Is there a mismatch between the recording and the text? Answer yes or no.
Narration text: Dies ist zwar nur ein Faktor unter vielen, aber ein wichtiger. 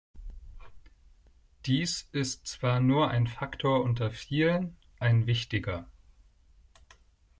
yes